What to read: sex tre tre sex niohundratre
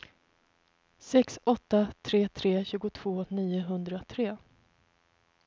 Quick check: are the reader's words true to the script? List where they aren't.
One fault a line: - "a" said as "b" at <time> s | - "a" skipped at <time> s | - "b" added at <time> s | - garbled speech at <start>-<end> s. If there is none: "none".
- "åtta" added at 1.4 s
- "sex" said as "tjugotvå" at 2.6 s